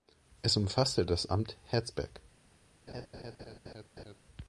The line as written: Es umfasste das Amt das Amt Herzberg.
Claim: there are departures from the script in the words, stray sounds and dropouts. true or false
true